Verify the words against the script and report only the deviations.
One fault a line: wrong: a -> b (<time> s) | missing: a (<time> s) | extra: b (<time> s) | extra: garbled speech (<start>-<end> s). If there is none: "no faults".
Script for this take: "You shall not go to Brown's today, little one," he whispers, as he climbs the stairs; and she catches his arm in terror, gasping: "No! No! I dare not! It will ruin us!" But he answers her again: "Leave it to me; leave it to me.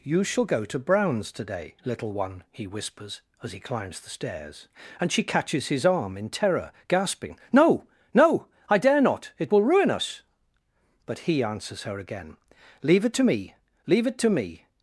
missing: not (0.5 s)